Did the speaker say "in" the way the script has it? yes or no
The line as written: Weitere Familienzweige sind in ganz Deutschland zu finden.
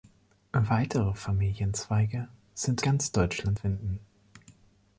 no